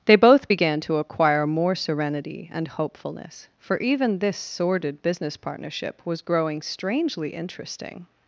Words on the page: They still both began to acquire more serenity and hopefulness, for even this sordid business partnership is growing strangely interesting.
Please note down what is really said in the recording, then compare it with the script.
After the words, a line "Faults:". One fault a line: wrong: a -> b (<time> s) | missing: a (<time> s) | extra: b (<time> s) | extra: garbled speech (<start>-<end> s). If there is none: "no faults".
They both began to acquire more serenity and hopefulness, for even this sordid business partnership was growing strangely interesting.
Faults:
missing: still (0.1 s)
wrong: is -> was (6.0 s)